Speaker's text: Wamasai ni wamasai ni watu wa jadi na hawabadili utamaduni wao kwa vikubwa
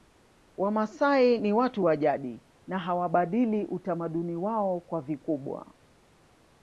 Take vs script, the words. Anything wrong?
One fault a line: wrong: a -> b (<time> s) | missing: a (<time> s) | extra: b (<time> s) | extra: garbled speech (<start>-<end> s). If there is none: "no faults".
missing: wamasai ni (1.5 s)